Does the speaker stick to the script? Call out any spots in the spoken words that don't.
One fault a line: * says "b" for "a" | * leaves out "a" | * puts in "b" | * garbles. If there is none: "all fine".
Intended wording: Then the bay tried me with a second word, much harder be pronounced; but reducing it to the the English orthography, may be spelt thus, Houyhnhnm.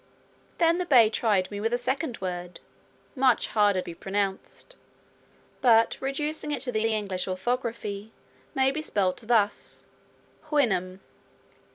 all fine